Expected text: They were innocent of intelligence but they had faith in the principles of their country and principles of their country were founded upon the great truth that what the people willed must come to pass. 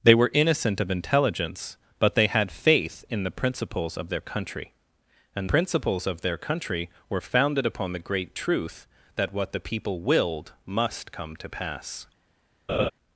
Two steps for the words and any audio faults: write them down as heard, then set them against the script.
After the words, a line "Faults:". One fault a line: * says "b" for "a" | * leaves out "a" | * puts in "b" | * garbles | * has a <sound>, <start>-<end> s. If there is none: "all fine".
They were innocent of intelligence but they had faith in the principles of their country and principles of their country were founded upon the great truth that what the people willed must come to pass.
Faults:
* has a laugh, 12.7-12.9 s